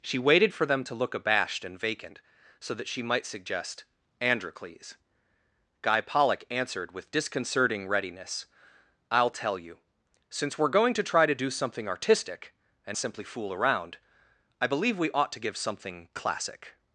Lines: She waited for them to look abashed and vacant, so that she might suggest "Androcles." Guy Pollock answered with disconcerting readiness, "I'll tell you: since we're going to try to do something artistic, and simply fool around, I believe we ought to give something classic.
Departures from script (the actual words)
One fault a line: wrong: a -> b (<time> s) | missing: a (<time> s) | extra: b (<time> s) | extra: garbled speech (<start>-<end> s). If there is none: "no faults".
no faults